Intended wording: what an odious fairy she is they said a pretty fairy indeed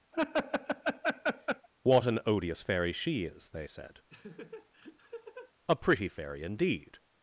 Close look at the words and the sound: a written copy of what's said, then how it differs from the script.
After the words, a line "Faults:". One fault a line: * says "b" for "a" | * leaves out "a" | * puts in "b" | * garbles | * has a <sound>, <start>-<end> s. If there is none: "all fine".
what an odious fairy she is they said a pretty fairy indeed
Faults:
* has a laugh, 0.1-1.7 s
* has a laugh, 4.1-5.5 s